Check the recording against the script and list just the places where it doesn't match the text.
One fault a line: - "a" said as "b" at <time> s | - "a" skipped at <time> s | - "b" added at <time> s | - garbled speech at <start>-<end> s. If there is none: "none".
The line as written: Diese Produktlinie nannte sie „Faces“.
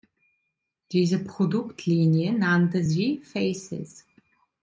none